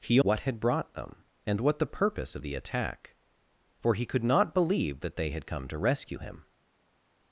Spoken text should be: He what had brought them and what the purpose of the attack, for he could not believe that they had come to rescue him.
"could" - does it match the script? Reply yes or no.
yes